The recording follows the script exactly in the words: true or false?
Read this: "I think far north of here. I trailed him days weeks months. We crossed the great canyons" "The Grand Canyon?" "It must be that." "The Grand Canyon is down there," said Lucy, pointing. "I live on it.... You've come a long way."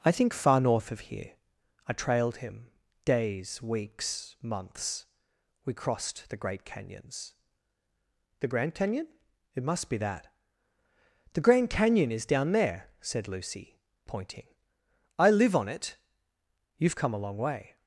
true